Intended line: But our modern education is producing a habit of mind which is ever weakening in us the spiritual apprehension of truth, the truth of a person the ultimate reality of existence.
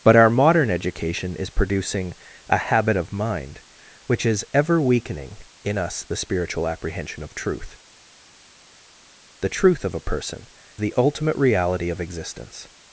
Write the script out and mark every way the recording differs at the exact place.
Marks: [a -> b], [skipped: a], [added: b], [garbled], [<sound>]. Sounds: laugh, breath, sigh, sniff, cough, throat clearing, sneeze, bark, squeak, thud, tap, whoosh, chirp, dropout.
But our modern education is producing a habit of mind which is ever weakening in us the spiritual apprehension of truth, the truth of a person the ultimate reality of existence.